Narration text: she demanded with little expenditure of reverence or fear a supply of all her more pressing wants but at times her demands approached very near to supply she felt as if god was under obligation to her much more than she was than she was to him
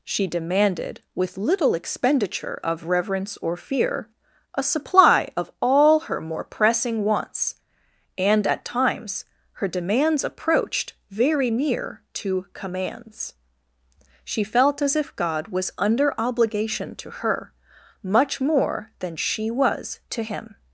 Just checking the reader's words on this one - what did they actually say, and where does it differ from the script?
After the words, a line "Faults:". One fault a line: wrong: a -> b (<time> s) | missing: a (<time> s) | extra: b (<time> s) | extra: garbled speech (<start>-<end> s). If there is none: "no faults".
she demanded with little expenditure of reverence or fear a supply of all her more pressing wants and at times her demands approached very near to commands she felt as if god was under obligation to her much more than she was to him
Faults:
wrong: but -> and (8.2 s)
wrong: supply -> commands (12.5 s)
missing: than she was (20.0 s)